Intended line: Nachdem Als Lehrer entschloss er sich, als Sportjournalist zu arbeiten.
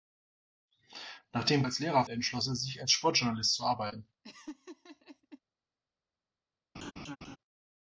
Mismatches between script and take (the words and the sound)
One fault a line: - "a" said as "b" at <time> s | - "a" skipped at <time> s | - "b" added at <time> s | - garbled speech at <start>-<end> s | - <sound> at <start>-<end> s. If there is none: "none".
- laugh at 4.2-5.4 s
- laugh at 6.7-7.4 s